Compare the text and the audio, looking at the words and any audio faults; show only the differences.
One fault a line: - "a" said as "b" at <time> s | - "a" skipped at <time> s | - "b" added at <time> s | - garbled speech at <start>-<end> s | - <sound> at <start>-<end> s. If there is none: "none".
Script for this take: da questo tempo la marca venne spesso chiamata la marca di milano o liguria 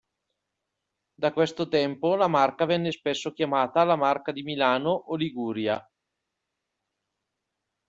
none